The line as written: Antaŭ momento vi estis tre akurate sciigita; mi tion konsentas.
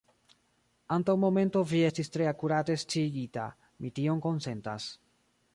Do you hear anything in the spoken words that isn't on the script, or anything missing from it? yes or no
no